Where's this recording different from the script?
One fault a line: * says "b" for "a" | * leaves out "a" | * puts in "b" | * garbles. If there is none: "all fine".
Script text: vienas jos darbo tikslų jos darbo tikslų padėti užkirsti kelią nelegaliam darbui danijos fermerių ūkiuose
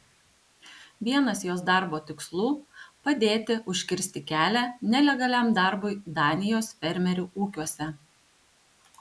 * leaves out "jos darbo tikslų"